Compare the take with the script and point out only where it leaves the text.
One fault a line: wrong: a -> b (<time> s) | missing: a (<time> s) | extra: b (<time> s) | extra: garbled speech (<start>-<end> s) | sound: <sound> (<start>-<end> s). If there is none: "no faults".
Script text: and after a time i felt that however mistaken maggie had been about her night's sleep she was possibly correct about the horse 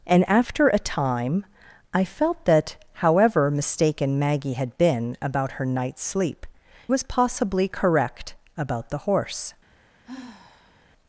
missing: she (6.5 s)
sound: sigh (10.0-10.9 s)